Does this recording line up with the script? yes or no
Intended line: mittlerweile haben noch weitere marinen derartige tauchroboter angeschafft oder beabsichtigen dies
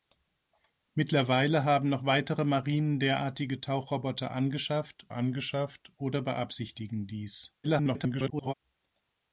no